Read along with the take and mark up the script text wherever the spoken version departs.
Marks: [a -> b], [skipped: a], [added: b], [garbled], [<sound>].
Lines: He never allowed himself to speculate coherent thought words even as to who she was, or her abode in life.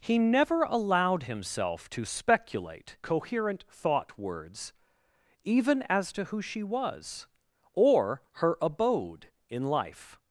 He never allowed himself to speculate coherent thought words even as to who she was, or her abode in life.